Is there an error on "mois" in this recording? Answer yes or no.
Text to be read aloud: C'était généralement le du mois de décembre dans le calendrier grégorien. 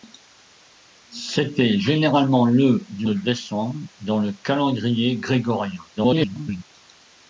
yes